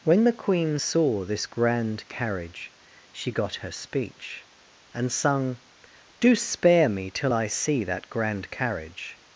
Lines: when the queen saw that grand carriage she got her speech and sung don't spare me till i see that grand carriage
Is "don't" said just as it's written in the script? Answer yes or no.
no